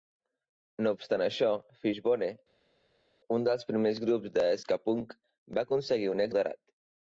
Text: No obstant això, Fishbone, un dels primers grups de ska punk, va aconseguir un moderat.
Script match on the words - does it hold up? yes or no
yes